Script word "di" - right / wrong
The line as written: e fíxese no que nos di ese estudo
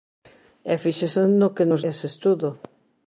wrong